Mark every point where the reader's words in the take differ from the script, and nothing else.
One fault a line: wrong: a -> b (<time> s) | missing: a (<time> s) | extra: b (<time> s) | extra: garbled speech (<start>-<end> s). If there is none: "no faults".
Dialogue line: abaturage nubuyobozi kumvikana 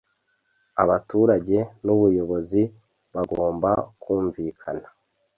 extra: bagomba (3.1 s)